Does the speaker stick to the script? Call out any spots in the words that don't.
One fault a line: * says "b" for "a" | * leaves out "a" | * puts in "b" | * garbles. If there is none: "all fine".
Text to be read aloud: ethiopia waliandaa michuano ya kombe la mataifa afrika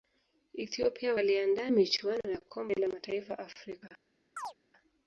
all fine